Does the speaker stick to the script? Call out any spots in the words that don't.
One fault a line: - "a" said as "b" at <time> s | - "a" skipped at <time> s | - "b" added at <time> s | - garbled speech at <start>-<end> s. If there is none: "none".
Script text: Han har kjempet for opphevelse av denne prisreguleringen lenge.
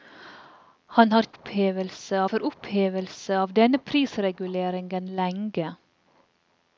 - "kjempet" said as "opphevelse" at 1.3 s